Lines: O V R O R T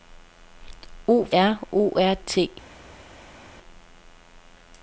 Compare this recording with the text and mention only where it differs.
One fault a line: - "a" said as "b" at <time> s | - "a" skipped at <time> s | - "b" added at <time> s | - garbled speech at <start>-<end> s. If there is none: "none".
none